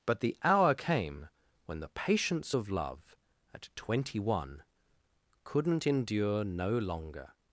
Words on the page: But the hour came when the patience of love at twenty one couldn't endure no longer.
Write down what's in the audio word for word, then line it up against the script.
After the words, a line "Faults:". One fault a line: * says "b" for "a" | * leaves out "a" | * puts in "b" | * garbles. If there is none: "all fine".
But the hour came when the patience of love at twenty one couldn't endure no longer.
Faults:
all fine